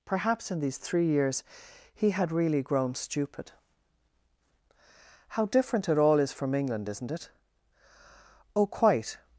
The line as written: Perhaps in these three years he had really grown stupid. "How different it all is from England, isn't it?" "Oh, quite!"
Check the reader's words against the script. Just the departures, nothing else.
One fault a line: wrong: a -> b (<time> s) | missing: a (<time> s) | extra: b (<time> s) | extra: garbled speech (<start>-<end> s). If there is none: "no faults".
no faults